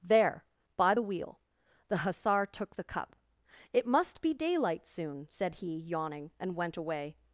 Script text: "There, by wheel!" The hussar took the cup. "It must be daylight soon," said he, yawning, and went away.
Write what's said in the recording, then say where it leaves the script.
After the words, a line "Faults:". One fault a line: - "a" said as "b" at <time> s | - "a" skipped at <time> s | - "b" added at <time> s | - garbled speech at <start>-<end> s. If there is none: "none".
"There, by the wheel!" The hussar took the cup. "It must be daylight soon," said he, yawning, and went away.
Faults:
- "the" added at 0.9 s